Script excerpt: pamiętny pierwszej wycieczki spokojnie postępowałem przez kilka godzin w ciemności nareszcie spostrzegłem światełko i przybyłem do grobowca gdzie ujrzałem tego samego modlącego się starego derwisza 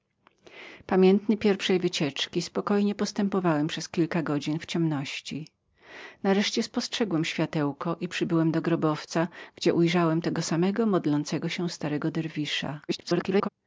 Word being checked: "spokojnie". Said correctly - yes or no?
yes